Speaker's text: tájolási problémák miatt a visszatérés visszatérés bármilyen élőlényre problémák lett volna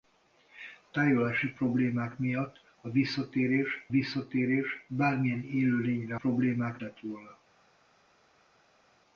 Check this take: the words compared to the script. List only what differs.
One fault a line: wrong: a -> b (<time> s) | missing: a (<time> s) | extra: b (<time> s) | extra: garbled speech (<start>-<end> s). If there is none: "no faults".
no faults